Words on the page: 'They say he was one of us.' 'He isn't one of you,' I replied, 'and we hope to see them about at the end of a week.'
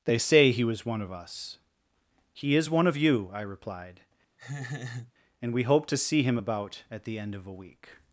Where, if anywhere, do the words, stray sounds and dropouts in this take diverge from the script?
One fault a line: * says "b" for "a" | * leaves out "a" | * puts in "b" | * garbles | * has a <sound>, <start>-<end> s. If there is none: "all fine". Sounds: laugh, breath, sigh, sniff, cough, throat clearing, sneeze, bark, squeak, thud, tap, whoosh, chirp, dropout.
* says "is" for "isn't"
* has a laugh, 4.4-5.1 s
* says "him" for "them"